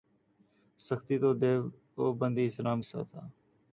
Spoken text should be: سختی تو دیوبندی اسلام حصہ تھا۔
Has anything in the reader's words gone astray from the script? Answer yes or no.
no